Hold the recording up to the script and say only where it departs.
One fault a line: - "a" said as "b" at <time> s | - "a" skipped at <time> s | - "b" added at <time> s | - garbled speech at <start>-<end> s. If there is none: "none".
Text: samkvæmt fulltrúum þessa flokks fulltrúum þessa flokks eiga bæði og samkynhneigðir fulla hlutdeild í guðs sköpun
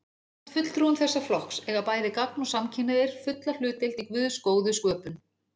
- "fulltrúum þessa flokks" skipped at 1.6 s
- "gagn" added at 2.2 s
- "góðu" added at 4.5 s